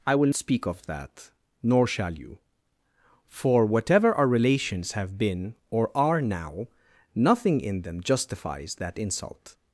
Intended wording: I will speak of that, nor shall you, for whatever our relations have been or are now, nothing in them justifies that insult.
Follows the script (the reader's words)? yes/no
yes